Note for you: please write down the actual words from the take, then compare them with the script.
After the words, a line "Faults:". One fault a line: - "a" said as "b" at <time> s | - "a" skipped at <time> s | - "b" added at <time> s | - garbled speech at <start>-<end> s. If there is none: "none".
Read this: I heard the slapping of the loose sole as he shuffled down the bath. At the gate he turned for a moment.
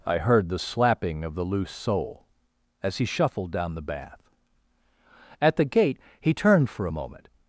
I heard the slapping of the loose sole as he shuffled down the bath. At the gate he turned for a moment.
Faults:
none